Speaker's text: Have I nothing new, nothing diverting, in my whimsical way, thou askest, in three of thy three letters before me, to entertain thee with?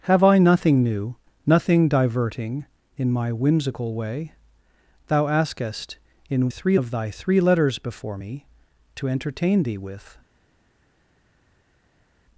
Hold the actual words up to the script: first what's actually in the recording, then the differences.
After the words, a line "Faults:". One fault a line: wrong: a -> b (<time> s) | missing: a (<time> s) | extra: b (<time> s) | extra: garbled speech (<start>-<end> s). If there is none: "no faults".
Have I nothing new, nothing diverting, in my whimsical way, thou askest, in three of thy three letters before me, to entertain thee with?
Faults:
no faults